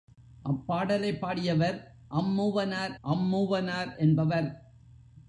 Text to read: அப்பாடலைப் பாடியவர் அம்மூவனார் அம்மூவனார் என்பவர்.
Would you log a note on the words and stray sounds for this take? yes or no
no